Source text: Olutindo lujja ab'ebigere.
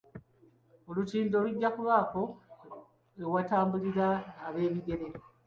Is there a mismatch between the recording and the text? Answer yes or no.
yes